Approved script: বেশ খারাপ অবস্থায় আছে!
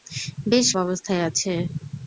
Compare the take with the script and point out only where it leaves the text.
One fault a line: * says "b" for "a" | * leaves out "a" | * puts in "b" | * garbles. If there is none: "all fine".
* leaves out "খারাপ"